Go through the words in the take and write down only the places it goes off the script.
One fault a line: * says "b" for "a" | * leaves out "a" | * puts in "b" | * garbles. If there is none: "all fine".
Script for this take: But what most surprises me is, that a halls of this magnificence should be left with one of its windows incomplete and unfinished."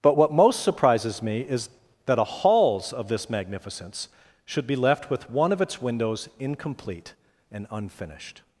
all fine